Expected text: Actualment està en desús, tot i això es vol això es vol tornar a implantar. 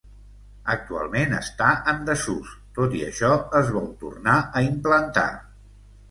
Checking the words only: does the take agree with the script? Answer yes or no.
no